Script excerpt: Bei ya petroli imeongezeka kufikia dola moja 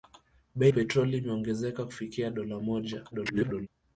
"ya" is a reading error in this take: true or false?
true